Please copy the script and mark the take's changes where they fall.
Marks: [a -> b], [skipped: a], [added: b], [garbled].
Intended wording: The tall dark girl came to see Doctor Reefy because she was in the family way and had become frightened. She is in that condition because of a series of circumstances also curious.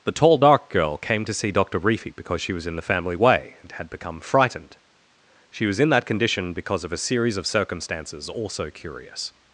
The tall dark girl came to see Doctor Reefy because she was in the family way and had become frightened. She [is -> was] in that condition because of a series of circumstances also curious.